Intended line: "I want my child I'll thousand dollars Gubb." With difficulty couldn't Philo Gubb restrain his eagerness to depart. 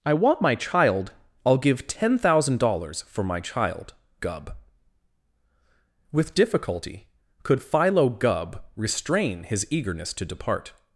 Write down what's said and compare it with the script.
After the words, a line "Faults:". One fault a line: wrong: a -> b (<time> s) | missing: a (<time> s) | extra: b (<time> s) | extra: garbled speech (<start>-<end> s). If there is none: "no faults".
"I want my child I'll give ten thousand dollars for my child, Gubb." With difficulty could Philo Gubb restrain his eagerness to depart.
Faults:
extra: give ten (1.6 s)
extra: for my child (3.0 s)
wrong: couldn't -> could (7.4 s)